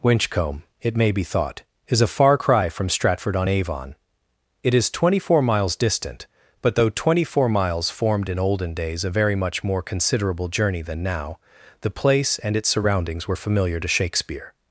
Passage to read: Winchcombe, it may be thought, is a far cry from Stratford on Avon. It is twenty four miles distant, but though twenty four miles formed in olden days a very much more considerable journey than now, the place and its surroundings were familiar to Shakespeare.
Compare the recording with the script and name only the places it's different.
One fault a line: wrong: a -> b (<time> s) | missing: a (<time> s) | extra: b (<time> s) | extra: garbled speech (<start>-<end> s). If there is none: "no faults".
no faults